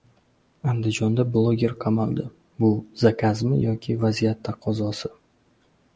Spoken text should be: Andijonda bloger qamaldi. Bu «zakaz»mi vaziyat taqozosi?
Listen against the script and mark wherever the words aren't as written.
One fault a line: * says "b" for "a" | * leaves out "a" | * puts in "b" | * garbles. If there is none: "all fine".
* puts in "yoki"